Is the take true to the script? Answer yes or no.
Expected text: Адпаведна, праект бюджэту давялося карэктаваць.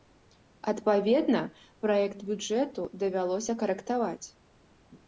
yes